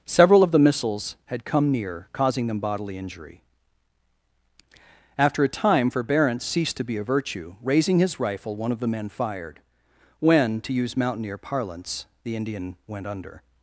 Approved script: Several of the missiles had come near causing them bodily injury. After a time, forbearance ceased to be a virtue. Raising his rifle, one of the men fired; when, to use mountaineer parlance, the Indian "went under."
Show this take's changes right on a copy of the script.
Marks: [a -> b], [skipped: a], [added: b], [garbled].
Several of the missiles had come near causing them bodily injury. After a time, forbearance ceased to be a virtue. Raising his rifle, one of the men fired; when, to use mountaineer parlance, the Indian "went under."